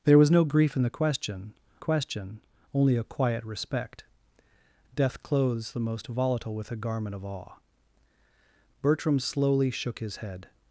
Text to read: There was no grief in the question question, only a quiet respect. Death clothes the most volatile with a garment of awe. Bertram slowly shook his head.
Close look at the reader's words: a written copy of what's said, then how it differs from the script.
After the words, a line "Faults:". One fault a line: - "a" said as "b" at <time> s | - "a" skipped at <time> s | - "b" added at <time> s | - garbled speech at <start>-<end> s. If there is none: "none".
There was no grief in the question question, only a quiet respect. Death clothes the most volatile with a garment of awe. Bertram slowly shook his head.
Faults:
none